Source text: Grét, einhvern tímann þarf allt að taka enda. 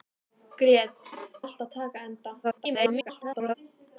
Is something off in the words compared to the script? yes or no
yes